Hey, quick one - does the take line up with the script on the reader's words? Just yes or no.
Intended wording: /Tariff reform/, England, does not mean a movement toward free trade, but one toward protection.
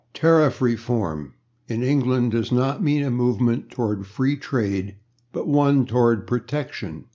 no